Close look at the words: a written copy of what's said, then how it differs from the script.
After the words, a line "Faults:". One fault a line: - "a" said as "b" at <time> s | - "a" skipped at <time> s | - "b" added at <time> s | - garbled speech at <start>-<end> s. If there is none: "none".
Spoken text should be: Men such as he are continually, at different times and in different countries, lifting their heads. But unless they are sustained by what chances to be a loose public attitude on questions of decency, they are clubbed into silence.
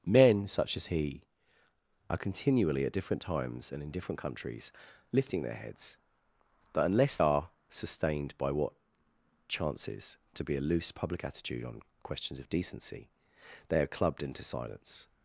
Men such as he are continually, at different times and in different countries, lifting their heads. But unless are sustained by what chances to be a loose public attitude on questions of decency, they are clubbed into silence.
Faults:
- "they" skipped at 7.2 s